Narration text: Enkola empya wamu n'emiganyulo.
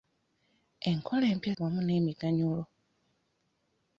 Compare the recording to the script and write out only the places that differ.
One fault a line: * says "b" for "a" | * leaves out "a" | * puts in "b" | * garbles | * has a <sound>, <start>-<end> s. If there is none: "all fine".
all fine